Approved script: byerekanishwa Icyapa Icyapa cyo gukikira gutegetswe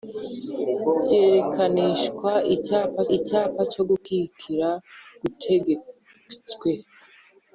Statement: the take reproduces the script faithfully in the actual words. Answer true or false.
true